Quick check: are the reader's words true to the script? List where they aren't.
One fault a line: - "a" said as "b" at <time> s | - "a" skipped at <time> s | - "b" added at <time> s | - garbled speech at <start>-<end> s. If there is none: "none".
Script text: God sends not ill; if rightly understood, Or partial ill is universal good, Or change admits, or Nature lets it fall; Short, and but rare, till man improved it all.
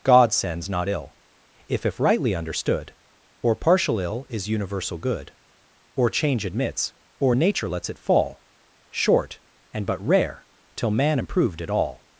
- "if" added at 1.9 s